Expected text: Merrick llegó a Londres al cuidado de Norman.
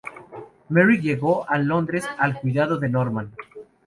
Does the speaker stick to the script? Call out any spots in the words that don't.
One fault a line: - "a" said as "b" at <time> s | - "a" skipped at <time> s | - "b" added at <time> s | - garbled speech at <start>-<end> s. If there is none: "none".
none